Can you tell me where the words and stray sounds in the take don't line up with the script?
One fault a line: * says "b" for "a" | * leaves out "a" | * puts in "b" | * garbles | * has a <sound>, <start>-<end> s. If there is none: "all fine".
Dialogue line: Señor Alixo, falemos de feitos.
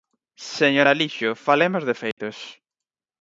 * has a dropout, 2.1-2.2 s